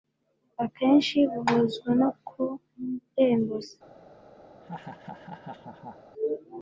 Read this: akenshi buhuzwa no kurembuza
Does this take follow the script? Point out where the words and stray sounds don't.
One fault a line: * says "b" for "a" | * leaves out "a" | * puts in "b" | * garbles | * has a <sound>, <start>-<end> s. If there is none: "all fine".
* has a laugh, 4.5-6.0 s